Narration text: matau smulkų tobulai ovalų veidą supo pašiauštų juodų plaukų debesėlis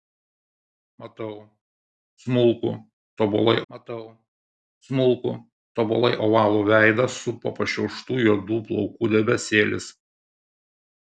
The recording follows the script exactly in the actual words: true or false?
false